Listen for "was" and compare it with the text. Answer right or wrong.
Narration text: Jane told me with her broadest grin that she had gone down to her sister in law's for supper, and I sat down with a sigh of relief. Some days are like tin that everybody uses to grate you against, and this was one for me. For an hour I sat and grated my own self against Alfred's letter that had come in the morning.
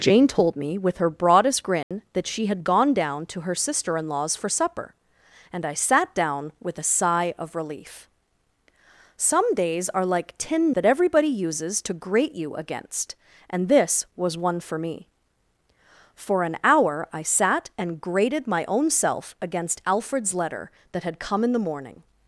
right